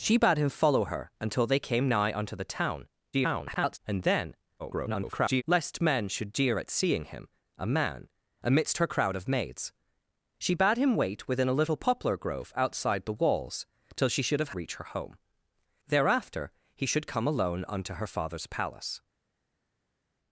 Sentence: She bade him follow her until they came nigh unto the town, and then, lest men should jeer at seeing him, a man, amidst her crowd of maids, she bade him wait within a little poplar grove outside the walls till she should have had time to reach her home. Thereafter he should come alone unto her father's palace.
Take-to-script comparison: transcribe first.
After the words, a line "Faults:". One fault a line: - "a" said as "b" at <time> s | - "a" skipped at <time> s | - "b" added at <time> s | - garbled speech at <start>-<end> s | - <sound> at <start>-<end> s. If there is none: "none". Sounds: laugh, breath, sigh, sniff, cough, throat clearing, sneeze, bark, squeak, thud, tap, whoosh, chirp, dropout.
She bade him follow her until they came nigh unto the town, [garbled] and then, [garbled] lest men should jeer at seeing him, a man, amidst her crowd of maids, she bade him wait within a little poplar grove outside the walls till she should have reach her home. Thereafter he should come alone unto her father's palace.
Faults:
- garbled speech at 3.1-3.8 s
- garbled speech at 4.6-5.4 s
- "had time to" skipped at 14.6 s